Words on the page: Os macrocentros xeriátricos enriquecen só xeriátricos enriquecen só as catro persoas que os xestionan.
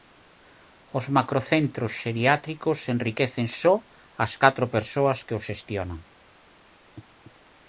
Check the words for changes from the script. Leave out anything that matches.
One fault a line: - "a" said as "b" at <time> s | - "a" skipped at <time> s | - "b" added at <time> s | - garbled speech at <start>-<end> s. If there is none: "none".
- "xeriátricos enriquecen só" skipped at 3.8 s